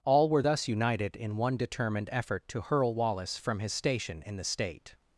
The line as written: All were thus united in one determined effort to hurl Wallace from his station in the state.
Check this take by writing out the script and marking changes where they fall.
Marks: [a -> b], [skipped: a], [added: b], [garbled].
All were thus united in one determined effort to hurl Wallace from his station in the state.